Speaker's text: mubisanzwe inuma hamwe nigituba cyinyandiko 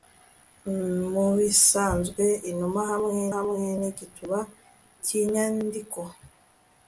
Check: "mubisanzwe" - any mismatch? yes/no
no